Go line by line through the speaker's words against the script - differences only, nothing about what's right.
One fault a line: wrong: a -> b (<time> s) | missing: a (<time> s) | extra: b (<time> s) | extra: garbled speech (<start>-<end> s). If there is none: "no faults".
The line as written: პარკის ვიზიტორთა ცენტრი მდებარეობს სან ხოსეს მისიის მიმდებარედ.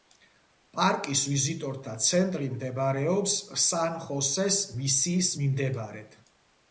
no faults